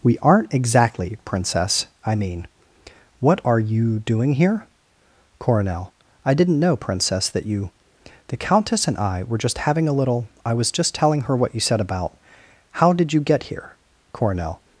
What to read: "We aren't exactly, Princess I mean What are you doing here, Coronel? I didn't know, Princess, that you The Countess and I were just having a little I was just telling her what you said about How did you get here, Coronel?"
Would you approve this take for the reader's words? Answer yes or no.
yes